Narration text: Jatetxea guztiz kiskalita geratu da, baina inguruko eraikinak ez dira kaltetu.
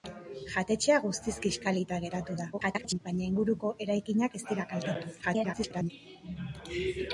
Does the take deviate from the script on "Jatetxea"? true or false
false